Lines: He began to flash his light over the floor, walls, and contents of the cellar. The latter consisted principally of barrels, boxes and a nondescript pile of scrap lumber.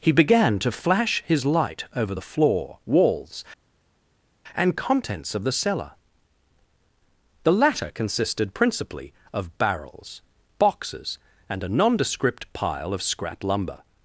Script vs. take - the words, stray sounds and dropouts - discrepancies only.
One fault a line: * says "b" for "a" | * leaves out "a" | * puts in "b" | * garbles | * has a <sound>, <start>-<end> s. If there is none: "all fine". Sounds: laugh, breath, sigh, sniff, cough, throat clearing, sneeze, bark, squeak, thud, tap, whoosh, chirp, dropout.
all fine